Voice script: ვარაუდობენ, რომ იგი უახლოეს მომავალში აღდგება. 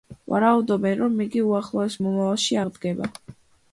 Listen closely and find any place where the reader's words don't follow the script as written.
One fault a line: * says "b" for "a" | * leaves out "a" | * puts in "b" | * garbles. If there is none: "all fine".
all fine